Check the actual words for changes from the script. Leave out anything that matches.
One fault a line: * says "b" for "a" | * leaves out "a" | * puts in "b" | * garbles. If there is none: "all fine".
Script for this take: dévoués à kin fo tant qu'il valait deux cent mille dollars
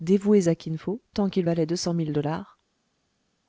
all fine